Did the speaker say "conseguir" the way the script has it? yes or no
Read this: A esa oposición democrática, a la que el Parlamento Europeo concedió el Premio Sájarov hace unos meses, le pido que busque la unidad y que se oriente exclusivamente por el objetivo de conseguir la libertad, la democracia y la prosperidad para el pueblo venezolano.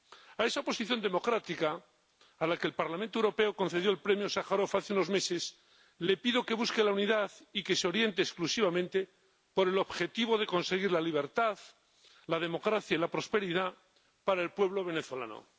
yes